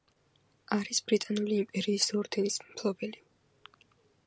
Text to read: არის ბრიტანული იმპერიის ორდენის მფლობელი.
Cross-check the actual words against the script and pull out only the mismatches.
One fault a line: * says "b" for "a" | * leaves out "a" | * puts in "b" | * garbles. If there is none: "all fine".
all fine